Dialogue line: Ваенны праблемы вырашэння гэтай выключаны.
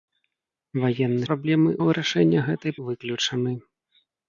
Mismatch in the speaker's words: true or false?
false